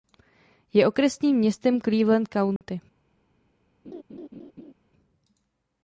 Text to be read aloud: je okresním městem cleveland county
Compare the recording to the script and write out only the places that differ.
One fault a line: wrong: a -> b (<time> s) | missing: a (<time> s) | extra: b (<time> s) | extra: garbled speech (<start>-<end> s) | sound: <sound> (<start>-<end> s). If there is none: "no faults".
sound: dropout (2.6-2.6 s)
sound: laugh (3.8-4.7 s)